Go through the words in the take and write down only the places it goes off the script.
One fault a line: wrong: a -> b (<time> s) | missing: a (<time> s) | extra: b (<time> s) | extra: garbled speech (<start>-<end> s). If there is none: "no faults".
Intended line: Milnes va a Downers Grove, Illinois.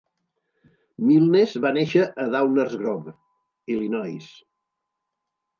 extra: néixer (1.8 s)